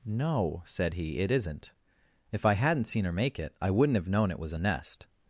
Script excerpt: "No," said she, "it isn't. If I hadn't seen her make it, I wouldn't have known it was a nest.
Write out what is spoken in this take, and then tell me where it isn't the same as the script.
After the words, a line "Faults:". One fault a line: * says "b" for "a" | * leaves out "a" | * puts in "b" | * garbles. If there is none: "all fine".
"No," said he, "it isn't. If I hadn't seen her make it, I wouldn't have known it was a nest.
Faults:
* says "he" for "she"